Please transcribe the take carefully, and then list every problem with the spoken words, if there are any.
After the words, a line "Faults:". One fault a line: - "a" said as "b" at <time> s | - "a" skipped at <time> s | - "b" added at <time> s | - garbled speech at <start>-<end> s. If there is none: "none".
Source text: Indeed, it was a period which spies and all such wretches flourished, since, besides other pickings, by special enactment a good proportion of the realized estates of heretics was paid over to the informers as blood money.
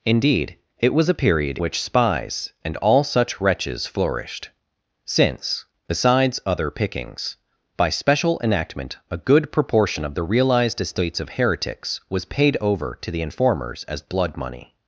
Indeed, it was a period which spies and all such wretches flourished, since, besides other pickings, by special enactment a good proportion of the realized estates of heretics was paid over to the informers as blood money.
Faults:
none